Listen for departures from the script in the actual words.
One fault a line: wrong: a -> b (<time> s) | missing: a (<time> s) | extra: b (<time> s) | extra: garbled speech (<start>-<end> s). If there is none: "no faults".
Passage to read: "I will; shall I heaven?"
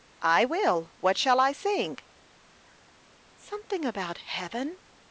extra: what (1.0 s)
extra: sing Something about (1.5 s)